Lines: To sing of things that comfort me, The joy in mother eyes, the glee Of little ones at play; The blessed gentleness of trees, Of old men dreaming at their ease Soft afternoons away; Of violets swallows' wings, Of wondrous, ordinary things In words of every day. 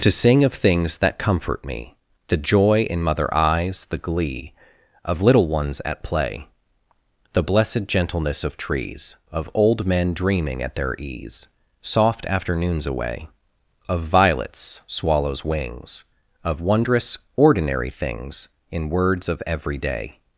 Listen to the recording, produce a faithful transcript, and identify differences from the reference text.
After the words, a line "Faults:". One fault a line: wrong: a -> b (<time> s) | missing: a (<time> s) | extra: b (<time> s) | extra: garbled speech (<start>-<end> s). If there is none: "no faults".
To sing of things that comfort me, The joy in mother eyes, the glee Of little ones at play; The blessed gentleness of trees, Of old men dreaming at their ease Soft afternoons away; Of violets swallows' wings, Of wondrous, ordinary things In words of every day.
Faults:
no faults